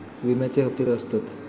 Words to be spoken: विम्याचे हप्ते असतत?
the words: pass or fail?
pass